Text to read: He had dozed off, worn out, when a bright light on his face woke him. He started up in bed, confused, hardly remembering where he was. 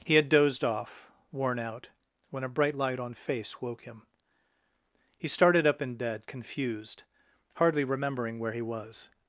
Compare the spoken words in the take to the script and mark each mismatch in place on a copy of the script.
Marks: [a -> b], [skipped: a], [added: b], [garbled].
He had dozed off, worn out, when a bright light on [skipped: his] face woke him. He started up in bed, confused, hardly remembering where he was.